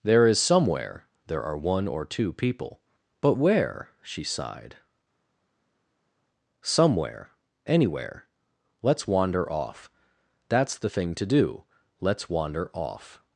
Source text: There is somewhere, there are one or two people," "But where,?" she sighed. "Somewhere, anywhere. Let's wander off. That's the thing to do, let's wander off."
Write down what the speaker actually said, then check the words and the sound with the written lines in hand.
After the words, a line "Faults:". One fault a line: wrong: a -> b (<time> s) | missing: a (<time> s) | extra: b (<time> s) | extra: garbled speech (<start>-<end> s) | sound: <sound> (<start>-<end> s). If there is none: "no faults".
There is somewhere, there are one or two people," "But where,?" she sighed. "Somewhere, anywhere. Let's wander off. That's the thing to do, let's wander off."
Faults:
no faults